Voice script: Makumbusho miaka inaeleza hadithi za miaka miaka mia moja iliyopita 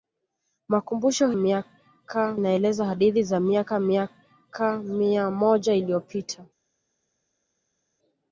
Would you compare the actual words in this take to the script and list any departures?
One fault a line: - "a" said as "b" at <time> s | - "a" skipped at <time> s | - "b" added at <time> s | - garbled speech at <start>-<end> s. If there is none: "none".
none